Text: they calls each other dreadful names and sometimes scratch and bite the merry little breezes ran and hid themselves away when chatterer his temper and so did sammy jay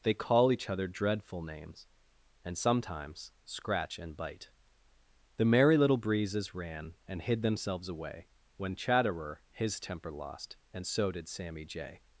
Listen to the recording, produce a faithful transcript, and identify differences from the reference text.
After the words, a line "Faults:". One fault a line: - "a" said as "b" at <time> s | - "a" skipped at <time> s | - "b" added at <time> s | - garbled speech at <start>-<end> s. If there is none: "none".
they call each other dreadful names and sometimes scratch and bite the merry little breezes ran and hid themselves away when chatterer his temper lost and so did sammy jay
Faults:
- "calls" said as "call" at 0.1 s
- "lost" added at 10.1 s